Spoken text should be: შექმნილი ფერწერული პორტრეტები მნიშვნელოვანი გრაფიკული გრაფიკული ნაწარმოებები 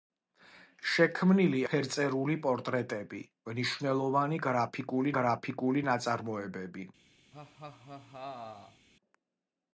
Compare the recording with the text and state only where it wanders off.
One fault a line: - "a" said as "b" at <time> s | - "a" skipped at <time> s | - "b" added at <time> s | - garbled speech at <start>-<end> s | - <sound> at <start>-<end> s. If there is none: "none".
- laugh at 7.3-8.9 s